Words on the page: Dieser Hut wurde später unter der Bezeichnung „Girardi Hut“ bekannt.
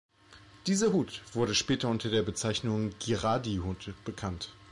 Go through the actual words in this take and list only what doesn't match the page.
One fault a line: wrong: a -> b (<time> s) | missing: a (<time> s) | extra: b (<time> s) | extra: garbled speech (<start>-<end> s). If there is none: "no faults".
no faults